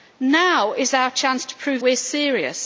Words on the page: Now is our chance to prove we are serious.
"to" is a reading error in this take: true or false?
false